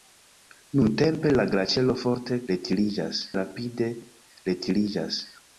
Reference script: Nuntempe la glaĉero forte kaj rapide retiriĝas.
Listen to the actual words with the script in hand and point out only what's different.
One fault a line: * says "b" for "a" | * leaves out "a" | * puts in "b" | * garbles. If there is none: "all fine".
* says "retiriĝas" for "kaj"